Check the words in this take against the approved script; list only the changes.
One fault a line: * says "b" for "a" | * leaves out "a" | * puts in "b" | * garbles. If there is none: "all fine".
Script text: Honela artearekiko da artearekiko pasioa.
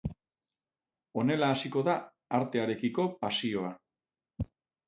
* says "hasiko" for "artearekiko"